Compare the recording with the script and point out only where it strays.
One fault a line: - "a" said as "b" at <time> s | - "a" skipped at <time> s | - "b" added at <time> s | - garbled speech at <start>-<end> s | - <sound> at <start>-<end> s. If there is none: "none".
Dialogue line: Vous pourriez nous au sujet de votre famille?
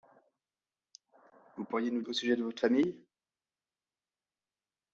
none